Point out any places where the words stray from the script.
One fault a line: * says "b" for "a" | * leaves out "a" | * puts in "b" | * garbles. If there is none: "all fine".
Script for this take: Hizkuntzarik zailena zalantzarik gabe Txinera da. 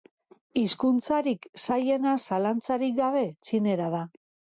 all fine